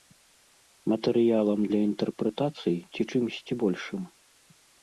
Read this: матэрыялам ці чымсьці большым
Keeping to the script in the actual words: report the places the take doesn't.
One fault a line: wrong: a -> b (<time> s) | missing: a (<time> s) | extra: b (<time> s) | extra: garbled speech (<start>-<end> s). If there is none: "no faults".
extra: для інтэрпрэтацый (1.7 s)